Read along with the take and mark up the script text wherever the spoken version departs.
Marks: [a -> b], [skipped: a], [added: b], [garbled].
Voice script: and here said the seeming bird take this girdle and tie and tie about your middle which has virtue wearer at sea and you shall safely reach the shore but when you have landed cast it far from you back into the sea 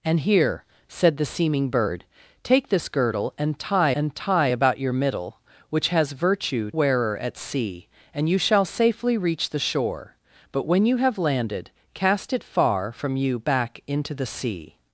and here said the seeming bird take this girdle and tie and tie about your middle which has virtue wearer at sea and you shall safely reach the shore but when you have landed cast it far from you back into the sea